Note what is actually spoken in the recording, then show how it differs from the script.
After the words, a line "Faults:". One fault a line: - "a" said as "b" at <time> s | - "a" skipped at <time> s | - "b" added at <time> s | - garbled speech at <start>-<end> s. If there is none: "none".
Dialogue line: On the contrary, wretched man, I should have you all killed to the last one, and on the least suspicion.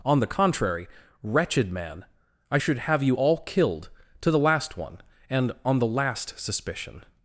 On the contrary, wretched man, I should have you all killed to the last one, and on the last suspicion.
Faults:
- "least" said as "last" at 5.9 s